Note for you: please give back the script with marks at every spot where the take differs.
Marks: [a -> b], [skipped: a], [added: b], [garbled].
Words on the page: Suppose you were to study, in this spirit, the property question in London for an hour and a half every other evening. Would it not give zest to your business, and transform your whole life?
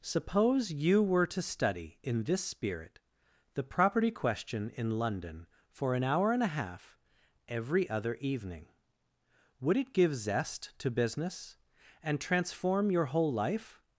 Suppose you were to study, in this spirit, the property question in London for an hour and a half every other evening. Would it [skipped: not] give zest to [skipped: your] business, and transform your whole life?